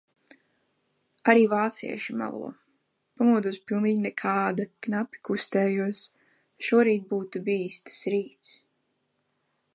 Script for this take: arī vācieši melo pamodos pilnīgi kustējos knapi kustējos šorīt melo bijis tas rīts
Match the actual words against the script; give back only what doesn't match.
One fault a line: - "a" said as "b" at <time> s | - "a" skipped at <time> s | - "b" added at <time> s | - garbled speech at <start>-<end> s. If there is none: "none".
- "kustējos" said as "nekāda" at 4.1 s
- "melo" said as "būtu" at 7.1 s